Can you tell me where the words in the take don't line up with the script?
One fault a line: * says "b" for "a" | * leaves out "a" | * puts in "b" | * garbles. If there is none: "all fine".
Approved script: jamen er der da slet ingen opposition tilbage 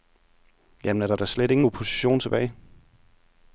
all fine